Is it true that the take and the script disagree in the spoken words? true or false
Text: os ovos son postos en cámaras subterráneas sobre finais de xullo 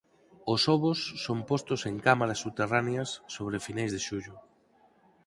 false